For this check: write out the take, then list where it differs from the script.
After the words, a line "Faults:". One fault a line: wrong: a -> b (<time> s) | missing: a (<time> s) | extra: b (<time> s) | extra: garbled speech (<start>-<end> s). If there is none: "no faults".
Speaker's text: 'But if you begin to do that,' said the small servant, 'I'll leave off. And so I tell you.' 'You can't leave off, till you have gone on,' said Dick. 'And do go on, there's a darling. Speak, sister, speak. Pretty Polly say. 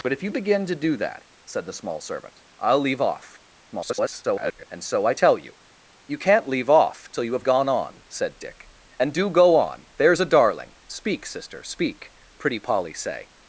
'But if you begin to do that,' said the small servant, 'I'll leave off. [garbled] And so I tell you.' 'You can't leave off, till you have gone on,' said Dick. 'And do go on, there's a darling. Speak, sister, speak. Pretty Polly say.
Faults:
extra: garbled speech (3.7-4.7 s)